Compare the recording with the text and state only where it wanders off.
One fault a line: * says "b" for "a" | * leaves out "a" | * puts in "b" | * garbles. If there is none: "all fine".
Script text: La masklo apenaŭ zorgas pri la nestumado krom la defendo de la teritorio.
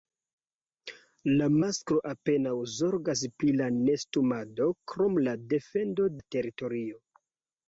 * leaves out "de"